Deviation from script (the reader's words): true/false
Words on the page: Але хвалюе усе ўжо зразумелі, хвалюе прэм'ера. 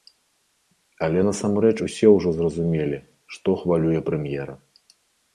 true